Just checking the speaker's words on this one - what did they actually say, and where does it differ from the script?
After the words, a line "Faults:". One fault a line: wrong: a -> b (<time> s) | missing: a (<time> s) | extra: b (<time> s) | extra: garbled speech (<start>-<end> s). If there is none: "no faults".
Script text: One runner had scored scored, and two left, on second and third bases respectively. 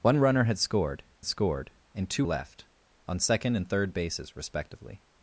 One runner had scored scored, and two left, on second and third bases respectively.
Faults:
no faults